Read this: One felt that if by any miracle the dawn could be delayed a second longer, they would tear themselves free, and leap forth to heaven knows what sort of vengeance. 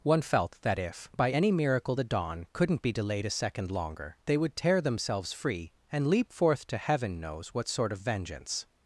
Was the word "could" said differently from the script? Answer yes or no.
yes